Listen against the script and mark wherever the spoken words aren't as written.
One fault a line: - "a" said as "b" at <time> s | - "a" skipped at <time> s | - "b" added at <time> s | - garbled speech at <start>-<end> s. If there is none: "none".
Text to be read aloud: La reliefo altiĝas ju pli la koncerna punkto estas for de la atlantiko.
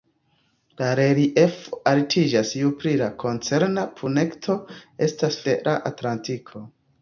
- "for" skipped at 5.4 s